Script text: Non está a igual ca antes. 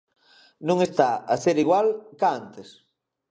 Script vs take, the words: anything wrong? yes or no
yes